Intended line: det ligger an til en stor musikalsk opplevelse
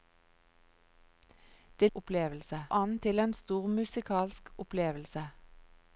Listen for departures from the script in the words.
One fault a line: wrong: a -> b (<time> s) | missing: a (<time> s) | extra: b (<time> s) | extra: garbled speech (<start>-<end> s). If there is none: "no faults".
wrong: ligger -> opplevelse (1.9 s)